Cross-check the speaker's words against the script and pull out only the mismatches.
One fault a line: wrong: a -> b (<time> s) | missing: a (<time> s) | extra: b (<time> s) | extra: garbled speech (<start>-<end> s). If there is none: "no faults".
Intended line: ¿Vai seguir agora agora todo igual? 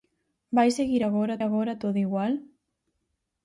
no faults